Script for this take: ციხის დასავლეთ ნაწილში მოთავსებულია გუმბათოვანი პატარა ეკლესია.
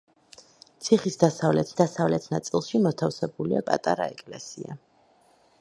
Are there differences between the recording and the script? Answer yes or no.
yes